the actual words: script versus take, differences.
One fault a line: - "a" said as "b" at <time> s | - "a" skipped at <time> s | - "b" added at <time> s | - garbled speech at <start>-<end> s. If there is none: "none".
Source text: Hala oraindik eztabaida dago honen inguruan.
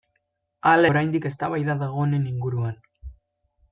none